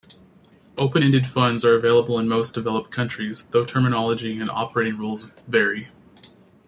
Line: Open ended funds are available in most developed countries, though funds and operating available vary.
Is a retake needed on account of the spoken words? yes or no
yes